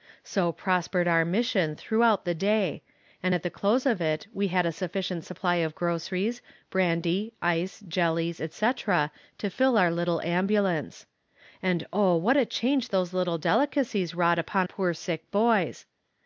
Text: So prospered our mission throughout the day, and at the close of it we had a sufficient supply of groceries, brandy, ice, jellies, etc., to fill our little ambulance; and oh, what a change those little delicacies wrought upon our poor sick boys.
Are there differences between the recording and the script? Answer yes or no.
yes